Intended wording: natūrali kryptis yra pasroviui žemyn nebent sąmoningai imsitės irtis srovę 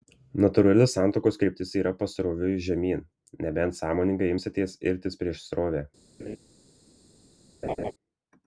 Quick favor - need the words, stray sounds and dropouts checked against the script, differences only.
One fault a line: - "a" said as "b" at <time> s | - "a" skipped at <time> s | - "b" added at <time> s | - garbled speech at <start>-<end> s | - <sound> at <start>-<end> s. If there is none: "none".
- "santuokos" added at 0.9 s
- "prieš" added at 5.2 s
- laugh at 6.2-6.4 s
- laugh at 7.6-7.9 s